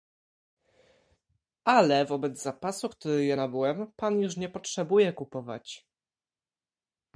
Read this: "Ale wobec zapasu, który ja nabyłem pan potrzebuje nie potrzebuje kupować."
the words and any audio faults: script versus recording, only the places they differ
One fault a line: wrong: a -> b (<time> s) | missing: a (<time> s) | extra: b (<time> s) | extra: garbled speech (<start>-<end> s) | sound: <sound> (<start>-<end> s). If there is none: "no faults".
wrong: potrzebuje -> już (4.2 s)